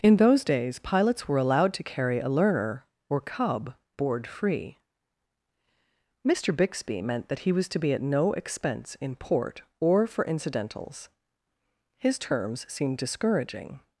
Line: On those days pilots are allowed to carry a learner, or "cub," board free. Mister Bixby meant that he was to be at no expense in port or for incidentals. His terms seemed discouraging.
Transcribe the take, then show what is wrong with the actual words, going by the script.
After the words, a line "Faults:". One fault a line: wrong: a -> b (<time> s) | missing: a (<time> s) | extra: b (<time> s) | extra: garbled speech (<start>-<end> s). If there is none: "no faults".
In those days pilots were allowed to carry a learner, or "cub," board free. Mister Bixby meant that he was to be at no expense in port or for incidentals. His terms seemed discouraging.
Faults:
wrong: On -> In (0.0 s)
wrong: are -> were (1.3 s)